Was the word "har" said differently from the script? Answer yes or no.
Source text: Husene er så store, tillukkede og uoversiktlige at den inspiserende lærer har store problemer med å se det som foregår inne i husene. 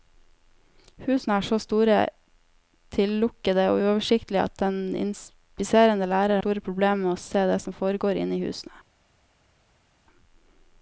yes